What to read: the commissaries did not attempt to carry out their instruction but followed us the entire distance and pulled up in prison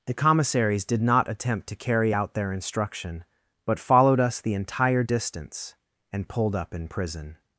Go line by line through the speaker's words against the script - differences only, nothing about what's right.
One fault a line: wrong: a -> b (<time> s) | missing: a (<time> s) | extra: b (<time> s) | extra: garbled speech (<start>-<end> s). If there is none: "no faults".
no faults